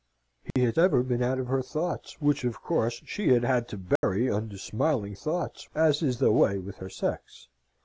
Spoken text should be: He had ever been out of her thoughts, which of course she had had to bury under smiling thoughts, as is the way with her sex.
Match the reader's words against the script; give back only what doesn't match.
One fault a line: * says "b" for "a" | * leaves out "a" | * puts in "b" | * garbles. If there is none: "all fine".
all fine